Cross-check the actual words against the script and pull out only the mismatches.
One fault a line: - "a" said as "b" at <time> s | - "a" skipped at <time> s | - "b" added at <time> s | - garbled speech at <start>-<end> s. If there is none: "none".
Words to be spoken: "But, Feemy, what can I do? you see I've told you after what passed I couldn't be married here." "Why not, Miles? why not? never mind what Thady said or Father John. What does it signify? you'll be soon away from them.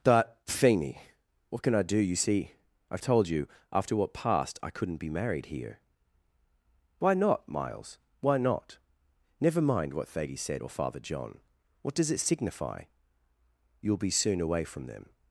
none